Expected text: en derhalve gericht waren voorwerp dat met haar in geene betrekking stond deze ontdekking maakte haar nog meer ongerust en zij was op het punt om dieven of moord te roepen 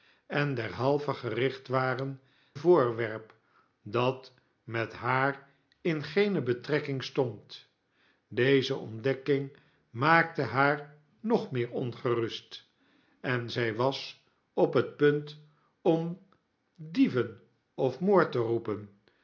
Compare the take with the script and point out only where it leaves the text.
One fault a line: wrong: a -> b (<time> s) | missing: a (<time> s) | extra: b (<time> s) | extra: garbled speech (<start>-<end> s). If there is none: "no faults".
no faults